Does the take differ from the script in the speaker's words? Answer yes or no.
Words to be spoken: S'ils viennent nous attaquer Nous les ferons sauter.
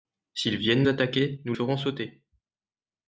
yes